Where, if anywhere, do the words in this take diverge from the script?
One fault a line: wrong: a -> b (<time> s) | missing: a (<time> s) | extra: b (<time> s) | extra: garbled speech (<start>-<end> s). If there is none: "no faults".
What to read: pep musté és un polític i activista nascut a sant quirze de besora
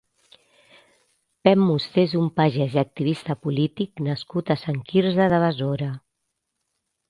wrong: polític -> pagès (2.4 s)
extra: polític (3.5 s)